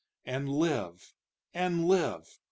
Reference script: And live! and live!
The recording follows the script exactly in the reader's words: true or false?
true